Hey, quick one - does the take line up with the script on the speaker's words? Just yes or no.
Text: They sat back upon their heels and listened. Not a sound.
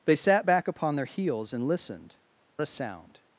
no